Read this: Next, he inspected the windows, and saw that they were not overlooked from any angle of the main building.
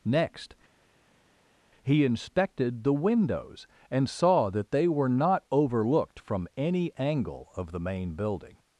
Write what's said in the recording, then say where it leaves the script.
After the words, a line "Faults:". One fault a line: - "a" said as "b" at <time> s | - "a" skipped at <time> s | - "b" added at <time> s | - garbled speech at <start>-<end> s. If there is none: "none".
Next, he inspected the windows, and saw that they were not overlooked from any angle of the main building.
Faults:
none